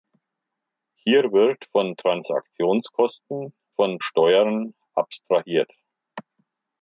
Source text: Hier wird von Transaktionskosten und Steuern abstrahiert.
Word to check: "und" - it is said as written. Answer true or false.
false